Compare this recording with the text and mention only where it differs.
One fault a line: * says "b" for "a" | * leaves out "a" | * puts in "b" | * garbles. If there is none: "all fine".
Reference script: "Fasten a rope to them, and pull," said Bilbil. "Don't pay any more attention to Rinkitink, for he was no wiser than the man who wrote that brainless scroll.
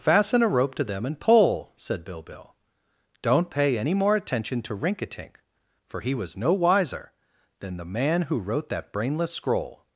all fine